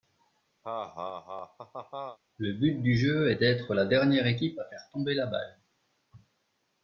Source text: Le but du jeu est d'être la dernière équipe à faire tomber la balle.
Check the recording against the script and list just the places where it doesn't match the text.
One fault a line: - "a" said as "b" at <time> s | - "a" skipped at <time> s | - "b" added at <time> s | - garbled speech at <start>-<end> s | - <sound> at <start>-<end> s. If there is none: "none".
- laugh at 0.6-2.2 s